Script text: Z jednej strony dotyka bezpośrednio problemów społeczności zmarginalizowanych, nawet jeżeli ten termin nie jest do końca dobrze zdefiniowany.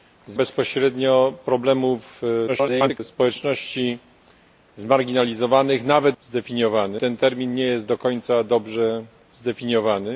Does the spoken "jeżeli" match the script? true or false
false